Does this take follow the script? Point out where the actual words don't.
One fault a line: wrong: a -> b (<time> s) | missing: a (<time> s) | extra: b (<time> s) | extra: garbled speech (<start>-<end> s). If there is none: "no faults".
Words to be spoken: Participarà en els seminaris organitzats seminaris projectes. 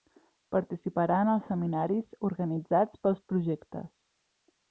wrong: seminaris -> pels (3.0 s)